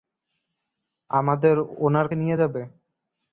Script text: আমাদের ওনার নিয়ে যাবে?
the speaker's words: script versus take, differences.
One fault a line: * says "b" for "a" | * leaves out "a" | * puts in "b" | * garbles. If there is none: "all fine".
all fine